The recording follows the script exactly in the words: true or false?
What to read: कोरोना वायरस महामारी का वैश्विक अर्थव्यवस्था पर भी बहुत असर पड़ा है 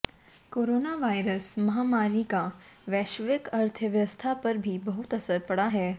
true